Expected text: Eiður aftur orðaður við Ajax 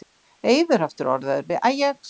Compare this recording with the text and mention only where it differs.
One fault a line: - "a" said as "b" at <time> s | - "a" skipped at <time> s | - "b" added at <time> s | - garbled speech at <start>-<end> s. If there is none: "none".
none